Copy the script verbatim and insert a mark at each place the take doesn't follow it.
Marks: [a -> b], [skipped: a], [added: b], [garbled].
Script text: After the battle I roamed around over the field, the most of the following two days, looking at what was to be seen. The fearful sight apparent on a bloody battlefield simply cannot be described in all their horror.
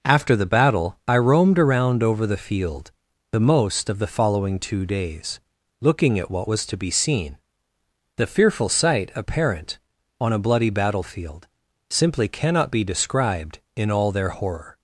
After the battle I roamed around over the field, the most of the following two days, looking at what was to be seen. The fearful sight apparent on a bloody battlefield simply cannot be described in all their horror.